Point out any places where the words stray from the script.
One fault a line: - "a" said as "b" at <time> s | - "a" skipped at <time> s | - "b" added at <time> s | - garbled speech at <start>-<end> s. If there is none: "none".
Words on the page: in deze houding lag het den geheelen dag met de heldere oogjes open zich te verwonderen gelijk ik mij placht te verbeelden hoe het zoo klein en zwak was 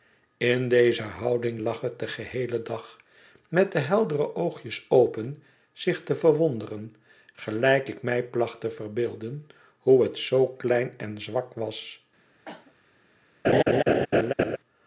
none